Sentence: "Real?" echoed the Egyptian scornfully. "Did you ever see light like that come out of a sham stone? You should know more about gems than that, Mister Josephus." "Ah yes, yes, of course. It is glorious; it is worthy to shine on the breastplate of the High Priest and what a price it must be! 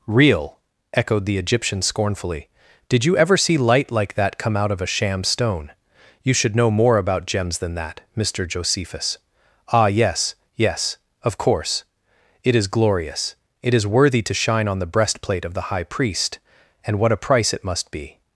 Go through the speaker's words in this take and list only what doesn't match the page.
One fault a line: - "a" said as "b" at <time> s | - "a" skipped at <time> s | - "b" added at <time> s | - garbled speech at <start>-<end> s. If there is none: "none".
none